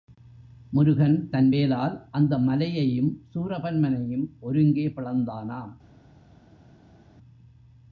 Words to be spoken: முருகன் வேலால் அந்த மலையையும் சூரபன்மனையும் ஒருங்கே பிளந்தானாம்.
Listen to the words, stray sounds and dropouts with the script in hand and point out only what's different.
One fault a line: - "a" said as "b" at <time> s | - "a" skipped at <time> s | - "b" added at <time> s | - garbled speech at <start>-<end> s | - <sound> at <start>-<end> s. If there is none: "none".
- "தன்" added at 1.3 s